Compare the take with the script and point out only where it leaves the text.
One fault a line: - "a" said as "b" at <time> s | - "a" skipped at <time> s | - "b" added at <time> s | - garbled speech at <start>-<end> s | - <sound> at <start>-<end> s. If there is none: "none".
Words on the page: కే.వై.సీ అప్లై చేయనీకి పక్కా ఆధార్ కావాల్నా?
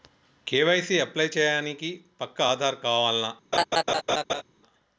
- laugh at 3.5-4.4 s